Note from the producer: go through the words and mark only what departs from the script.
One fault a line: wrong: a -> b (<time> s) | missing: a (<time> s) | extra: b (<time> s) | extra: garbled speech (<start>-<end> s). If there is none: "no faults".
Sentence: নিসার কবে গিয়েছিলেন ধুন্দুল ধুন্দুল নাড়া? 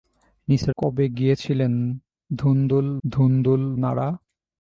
no faults